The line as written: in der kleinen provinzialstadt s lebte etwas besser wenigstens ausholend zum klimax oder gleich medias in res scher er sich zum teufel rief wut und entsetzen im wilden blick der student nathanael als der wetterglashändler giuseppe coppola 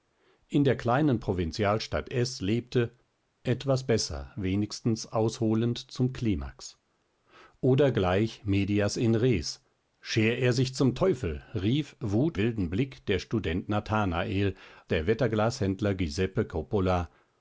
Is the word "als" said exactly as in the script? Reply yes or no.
no